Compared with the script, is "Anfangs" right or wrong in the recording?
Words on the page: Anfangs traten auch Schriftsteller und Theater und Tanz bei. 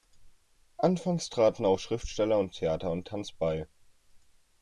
right